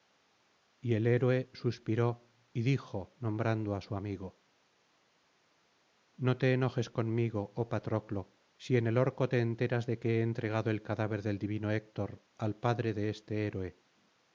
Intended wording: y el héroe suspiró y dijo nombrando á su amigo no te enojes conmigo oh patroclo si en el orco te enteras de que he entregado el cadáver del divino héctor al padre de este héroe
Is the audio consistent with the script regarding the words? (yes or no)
yes